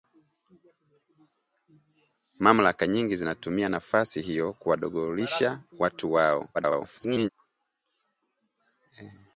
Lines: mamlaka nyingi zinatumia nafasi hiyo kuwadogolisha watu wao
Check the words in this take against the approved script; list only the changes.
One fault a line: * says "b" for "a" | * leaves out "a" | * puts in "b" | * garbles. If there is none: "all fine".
* garbles